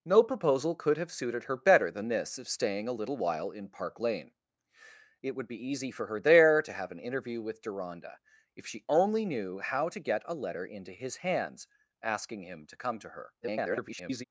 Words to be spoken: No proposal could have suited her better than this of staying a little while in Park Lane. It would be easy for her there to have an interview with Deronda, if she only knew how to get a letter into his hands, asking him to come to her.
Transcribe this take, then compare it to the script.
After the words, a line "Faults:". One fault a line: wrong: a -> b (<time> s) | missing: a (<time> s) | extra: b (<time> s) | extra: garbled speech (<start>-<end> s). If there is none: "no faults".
No proposal could have suited her better than this of staying a little while in Park Lane. It would be easy for her there to have an interview with Deronda, if she only knew how to get a letter into his hands, asking him to come to her. [garbled]
Faults:
extra: garbled speech (13.4-14.2 s)